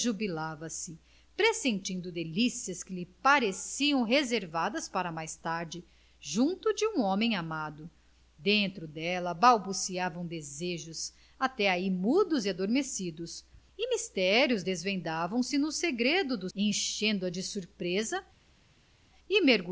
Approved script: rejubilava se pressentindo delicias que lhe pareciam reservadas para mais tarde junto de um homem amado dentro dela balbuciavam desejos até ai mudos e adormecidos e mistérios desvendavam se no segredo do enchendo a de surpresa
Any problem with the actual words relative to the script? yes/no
no